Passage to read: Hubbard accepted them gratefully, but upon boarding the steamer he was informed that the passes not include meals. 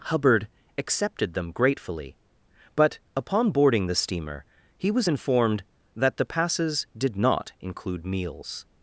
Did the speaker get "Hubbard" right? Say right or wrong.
right